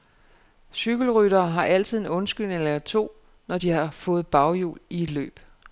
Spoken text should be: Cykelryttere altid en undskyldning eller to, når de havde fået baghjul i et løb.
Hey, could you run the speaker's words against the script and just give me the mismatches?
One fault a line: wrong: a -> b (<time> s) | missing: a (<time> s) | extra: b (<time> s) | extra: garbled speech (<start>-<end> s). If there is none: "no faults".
extra: har (1.5 s)
wrong: havde -> har (3.7 s)